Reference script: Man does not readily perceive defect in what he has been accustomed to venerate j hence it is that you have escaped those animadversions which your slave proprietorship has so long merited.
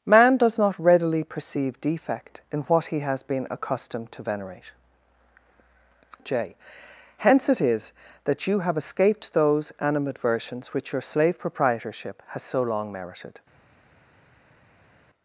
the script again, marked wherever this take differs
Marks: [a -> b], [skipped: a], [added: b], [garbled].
Man does not readily perceive defect in what he has been accustomed to venerate j hence it is that you have escaped those animadversions which your slave proprietorship has so long merited.